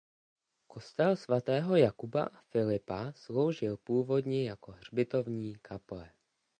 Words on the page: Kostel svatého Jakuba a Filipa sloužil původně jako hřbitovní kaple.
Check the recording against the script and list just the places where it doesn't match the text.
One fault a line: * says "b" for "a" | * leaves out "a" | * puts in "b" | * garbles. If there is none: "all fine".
all fine